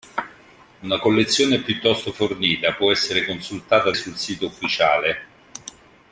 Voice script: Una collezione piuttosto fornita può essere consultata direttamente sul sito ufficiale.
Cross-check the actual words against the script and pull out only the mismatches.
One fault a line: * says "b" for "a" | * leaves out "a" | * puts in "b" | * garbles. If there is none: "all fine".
* leaves out "direttamente"